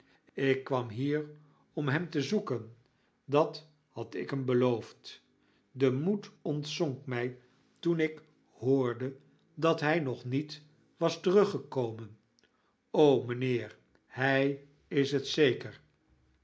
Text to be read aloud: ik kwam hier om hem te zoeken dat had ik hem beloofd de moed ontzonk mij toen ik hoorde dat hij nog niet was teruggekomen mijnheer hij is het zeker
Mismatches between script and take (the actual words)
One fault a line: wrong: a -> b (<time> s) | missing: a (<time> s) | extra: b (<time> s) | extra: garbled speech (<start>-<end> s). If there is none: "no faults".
no faults